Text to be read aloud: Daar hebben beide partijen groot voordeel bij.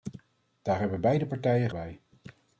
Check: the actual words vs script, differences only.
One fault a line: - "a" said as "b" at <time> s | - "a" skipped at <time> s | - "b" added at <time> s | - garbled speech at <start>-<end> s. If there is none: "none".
- "groot voordeel" skipped at 1.7 s